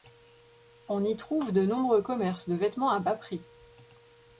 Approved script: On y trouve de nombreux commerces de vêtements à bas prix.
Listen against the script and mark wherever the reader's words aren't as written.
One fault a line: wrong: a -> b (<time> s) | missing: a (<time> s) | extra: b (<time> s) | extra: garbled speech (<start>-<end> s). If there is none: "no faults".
no faults